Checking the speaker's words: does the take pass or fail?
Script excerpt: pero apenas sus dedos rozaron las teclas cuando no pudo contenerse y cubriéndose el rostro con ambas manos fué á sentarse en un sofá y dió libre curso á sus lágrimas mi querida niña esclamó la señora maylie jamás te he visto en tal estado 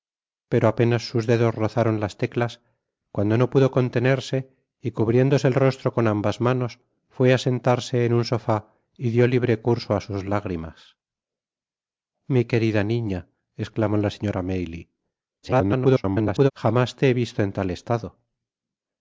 fail